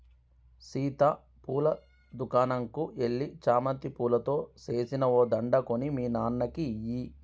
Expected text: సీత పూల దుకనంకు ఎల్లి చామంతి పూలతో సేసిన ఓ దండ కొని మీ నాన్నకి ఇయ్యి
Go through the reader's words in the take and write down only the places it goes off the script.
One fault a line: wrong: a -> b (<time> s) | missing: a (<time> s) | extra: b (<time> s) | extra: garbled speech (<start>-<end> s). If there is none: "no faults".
no faults